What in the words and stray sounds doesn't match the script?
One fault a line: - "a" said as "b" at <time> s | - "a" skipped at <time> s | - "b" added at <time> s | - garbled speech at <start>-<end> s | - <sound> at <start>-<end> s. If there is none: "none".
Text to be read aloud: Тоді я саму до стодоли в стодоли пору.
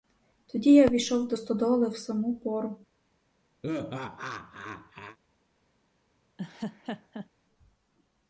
- "саму" said as "ввійшов" at 0.9 s
- "стодоли" said as "саму" at 2.0 s
- laugh at 3.6-5.2 s
- laugh at 6.4-7.3 s